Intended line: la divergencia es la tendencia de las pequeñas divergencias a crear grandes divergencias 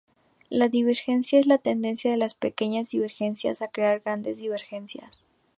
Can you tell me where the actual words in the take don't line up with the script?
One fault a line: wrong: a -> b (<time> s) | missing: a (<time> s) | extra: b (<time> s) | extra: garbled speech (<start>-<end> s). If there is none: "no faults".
no faults